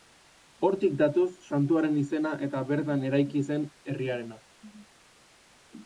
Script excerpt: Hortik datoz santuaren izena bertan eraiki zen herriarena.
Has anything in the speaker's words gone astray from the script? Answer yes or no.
yes